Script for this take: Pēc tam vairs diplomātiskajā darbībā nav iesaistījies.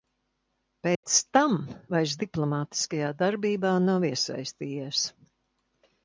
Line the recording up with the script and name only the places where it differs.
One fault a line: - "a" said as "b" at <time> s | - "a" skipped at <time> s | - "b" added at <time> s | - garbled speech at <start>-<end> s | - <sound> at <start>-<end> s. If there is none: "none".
- dropout at 0.9-1.0 s